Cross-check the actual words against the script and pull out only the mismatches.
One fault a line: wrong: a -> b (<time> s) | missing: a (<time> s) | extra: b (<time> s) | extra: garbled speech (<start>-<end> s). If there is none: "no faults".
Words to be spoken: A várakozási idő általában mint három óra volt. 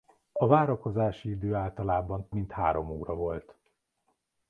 no faults